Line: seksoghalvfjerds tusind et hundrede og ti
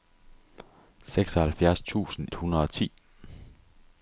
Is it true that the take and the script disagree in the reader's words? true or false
true